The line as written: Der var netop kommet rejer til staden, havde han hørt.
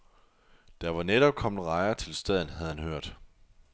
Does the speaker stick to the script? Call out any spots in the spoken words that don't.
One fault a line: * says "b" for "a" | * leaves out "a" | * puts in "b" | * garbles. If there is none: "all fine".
all fine